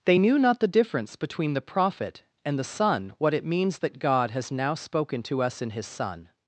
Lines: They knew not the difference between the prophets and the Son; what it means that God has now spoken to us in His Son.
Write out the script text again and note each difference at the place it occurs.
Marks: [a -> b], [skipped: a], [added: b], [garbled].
They knew not the difference between the [prophets -> prophet] and the Son; what it means that God has now spoken to us in His Son.